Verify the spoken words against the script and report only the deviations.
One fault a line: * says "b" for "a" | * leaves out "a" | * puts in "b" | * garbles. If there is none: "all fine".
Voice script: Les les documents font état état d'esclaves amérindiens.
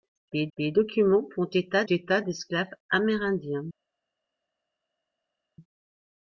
all fine